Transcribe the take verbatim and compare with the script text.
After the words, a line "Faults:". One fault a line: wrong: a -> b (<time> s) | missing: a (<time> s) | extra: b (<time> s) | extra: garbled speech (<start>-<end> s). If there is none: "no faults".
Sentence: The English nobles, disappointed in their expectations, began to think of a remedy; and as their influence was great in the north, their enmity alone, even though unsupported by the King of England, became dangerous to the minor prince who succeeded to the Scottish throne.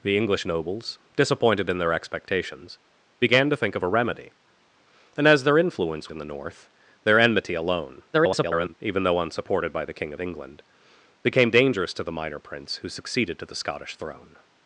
The English nobles, disappointed in their expectations, began to think of a remedy; and as their influence in the north, their enmity alone, [garbled] even though unsupported by the King of England, became dangerous to the minor prince who succeeded to the Scottish throne.
Faults:
missing: was great (6.1 s)
extra: garbled speech (8.1-8.7 s)